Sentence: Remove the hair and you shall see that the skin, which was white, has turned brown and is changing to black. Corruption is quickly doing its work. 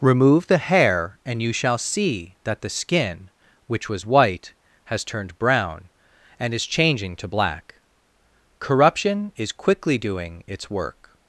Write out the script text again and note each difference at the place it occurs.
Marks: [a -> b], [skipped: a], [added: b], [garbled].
Remove the hair and you shall see that the skin, which was white, has turned brown and is changing to black. Corruption is quickly doing its work.